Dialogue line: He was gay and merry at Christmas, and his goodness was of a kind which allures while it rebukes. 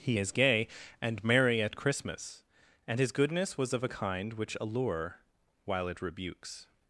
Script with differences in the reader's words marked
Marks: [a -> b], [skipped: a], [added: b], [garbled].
He [was -> is] gay and merry at Christmas, and his goodness was of a kind which [allures -> allure] while it rebukes.